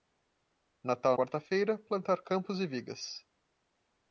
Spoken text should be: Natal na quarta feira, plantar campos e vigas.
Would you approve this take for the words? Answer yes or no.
no